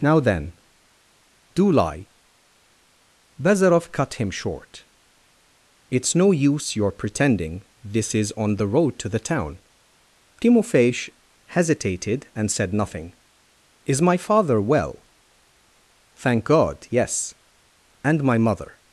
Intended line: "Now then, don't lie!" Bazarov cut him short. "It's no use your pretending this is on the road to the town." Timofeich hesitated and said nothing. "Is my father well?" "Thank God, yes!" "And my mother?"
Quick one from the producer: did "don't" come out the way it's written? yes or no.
no